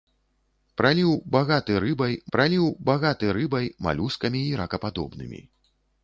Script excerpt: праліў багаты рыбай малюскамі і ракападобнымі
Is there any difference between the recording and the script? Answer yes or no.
yes